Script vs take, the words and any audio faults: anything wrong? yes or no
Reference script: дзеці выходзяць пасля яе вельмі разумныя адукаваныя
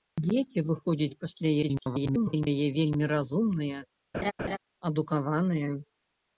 yes